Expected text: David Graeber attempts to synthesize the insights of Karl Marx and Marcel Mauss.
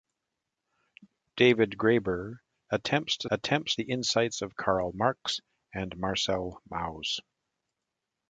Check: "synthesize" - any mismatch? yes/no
yes